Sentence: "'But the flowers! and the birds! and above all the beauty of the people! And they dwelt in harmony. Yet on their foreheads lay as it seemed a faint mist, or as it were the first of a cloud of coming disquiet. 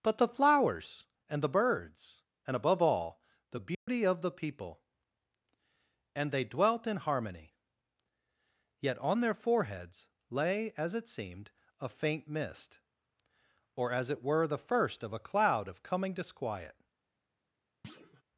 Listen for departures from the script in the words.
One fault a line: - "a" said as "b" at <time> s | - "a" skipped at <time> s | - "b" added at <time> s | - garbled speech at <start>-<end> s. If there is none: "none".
none